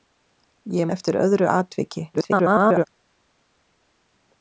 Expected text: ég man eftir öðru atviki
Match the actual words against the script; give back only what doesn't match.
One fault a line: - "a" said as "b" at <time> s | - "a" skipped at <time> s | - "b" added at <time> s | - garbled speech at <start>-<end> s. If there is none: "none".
- "man" skipped at 0.9 s
- garbled speech at 2.1-2.9 s